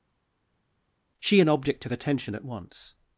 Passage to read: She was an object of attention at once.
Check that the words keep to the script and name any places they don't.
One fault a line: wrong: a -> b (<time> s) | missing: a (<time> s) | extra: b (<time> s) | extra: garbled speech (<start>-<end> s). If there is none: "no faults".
missing: was (1.4 s)